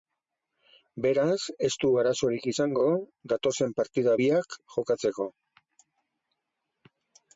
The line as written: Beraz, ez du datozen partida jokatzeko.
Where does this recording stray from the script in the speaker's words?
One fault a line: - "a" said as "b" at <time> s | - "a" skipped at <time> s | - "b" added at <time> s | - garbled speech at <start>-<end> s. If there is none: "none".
- "arazorik izango" added at 2.0 s
- "biak" added at 4.2 s